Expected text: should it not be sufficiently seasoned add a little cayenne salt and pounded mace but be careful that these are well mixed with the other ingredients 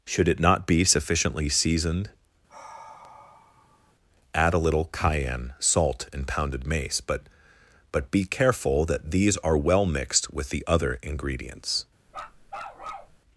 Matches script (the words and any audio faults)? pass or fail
fail